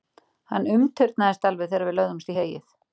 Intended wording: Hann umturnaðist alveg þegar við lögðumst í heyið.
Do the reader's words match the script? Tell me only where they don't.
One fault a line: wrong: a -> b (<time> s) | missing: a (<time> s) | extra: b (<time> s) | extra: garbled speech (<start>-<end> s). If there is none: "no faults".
no faults